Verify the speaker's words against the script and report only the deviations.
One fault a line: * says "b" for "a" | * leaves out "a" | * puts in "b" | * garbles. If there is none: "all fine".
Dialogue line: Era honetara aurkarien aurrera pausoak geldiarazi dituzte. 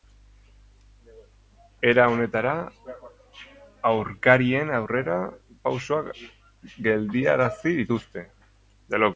all fine